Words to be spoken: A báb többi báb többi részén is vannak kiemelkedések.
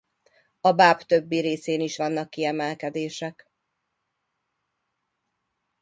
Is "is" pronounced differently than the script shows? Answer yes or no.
no